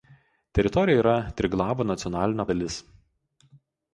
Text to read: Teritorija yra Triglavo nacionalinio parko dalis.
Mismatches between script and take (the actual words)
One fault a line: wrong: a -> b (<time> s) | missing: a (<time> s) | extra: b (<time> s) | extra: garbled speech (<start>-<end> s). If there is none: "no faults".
missing: parko (2.5 s)